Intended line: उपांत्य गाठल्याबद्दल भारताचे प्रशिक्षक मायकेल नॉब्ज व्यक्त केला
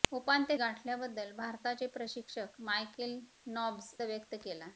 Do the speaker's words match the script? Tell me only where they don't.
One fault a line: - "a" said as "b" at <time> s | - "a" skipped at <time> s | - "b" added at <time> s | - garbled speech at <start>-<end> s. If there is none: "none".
none